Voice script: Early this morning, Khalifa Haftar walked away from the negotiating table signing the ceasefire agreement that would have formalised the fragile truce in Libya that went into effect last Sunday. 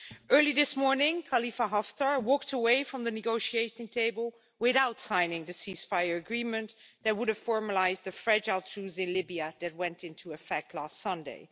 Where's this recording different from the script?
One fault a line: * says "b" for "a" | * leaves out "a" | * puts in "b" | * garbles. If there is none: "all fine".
* puts in "without"